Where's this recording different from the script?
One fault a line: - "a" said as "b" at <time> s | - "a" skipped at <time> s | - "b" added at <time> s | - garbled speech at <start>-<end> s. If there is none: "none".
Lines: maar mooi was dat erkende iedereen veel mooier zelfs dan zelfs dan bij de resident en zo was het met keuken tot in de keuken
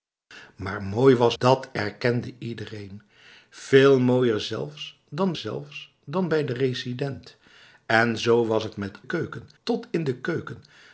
none